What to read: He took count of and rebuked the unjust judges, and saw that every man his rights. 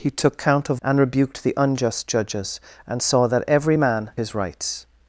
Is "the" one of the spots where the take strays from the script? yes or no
no